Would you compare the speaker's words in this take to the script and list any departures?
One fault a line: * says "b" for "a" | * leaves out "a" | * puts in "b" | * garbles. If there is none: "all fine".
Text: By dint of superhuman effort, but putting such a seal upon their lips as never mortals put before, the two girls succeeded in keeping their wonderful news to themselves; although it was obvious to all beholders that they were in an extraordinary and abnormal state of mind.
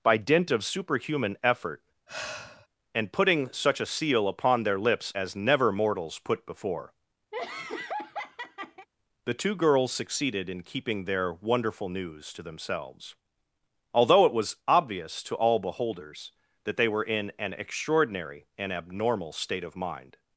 * says "and" for "but"